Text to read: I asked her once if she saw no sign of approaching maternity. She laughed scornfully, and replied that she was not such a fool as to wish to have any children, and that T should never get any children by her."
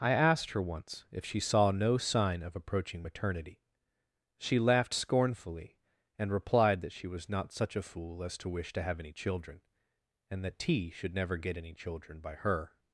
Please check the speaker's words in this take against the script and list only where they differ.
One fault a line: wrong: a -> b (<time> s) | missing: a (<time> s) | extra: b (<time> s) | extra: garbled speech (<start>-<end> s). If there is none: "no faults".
no faults